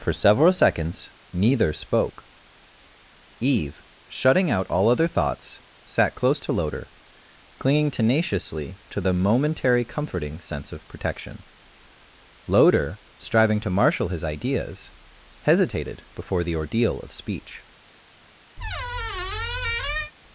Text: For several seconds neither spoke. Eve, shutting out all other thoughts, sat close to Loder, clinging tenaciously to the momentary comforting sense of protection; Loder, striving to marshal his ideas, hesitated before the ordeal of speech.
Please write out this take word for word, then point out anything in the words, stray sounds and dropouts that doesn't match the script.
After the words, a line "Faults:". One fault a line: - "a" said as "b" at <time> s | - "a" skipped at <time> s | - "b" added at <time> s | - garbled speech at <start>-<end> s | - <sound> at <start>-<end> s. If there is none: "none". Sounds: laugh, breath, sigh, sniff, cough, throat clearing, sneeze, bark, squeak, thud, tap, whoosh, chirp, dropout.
For several seconds neither spoke. Eve, shutting out all other thoughts, sat close to Loder, clinging tenaciously to the momentary comforting sense of protection; Loder, striving to marshal his ideas, hesitated before the ordeal of speech.
Faults:
- squeak at 18.6-20.1 s